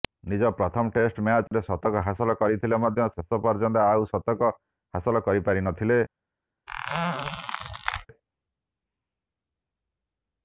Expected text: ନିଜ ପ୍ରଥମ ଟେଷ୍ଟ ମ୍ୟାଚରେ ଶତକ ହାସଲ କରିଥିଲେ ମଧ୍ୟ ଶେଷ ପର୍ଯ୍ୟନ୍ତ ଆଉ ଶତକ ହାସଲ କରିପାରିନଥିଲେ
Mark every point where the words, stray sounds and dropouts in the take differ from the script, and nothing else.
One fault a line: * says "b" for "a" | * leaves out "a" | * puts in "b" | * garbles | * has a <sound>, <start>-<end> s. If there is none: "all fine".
* has a dropout, 1.5-1.5 s
* has a squeak, 6.7-8.1 s